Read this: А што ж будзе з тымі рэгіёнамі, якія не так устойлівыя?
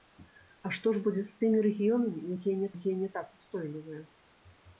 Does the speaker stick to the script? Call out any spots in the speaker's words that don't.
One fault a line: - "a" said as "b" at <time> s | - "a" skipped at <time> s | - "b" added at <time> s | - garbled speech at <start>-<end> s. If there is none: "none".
- "якія не" added at 2.8 s